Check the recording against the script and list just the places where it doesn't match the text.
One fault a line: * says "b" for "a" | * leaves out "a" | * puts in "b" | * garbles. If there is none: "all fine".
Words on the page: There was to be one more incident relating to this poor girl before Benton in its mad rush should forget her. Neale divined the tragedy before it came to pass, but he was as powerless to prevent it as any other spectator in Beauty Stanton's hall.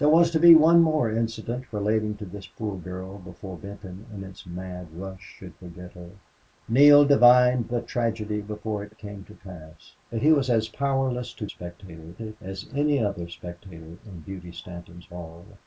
* puts in "it"
* says "spectator" for "prevent"